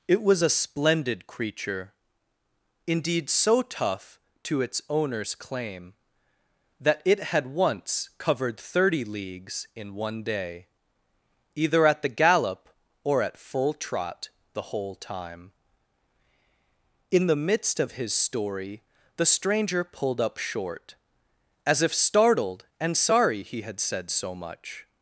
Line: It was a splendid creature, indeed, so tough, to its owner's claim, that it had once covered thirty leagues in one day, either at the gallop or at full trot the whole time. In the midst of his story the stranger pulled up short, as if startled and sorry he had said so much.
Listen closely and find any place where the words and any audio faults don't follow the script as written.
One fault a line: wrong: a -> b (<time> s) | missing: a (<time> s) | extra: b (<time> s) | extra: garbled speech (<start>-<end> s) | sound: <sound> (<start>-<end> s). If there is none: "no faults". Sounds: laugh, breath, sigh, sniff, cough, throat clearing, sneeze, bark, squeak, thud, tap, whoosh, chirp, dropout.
no faults